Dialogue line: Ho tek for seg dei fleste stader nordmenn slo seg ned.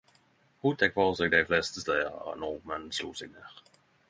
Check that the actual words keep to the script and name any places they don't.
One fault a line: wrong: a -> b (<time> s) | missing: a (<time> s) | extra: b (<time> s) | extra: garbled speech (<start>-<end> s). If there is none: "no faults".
no faults